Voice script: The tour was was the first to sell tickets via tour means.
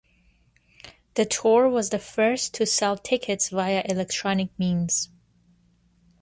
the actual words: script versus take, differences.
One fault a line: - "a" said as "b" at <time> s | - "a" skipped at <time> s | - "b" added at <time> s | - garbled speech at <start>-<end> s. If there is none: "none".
- "was" skipped at 1.9 s
- "tour" said as "electronic" at 3.9 s